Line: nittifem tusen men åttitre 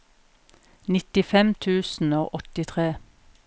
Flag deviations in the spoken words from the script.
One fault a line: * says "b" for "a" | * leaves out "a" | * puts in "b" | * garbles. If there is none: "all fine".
* says "og" for "men"